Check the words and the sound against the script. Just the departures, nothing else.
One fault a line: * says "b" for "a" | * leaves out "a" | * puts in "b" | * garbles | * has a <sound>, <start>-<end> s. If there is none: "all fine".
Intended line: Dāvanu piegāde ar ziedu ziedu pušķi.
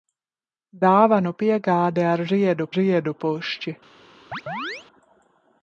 * has a chirp, 4.3-4.9 s